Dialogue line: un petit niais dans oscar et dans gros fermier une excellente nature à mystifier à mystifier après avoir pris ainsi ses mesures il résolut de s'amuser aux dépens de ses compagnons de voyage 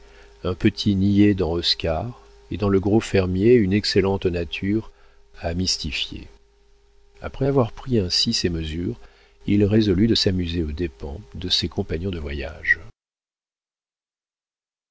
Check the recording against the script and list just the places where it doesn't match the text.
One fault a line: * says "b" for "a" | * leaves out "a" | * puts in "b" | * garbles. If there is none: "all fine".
* puts in "le"
* leaves out "à mystifier"